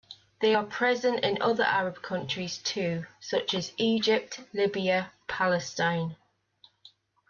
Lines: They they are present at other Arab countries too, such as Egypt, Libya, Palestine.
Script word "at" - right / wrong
wrong